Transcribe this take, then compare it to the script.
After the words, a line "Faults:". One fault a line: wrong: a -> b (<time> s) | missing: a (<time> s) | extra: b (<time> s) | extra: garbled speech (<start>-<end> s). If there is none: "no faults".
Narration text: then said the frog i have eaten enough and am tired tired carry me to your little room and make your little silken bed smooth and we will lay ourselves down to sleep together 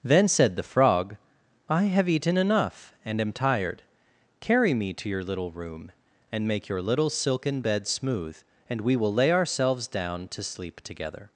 then said the frog i have eaten enough and am tired carry me to your little room and make your little silken bed smooth and we will lay ourselves down to sleep together
Faults:
missing: tired (3.8 s)